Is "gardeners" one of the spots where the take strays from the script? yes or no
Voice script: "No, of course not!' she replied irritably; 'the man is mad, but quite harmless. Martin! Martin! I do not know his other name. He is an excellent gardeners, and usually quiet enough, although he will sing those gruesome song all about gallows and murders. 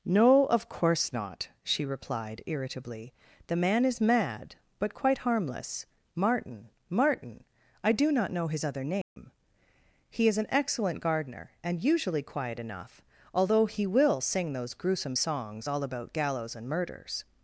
yes